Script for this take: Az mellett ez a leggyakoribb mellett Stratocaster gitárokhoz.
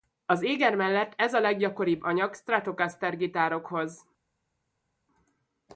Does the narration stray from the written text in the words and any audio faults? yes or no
yes